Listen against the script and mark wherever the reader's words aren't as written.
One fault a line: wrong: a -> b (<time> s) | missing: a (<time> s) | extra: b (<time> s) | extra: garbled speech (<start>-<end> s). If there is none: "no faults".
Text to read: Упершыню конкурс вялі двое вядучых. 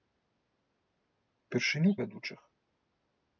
missing: конкурс вялі двое (1.9 s)